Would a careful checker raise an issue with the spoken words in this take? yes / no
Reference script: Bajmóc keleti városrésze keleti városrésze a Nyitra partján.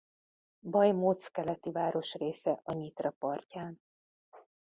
yes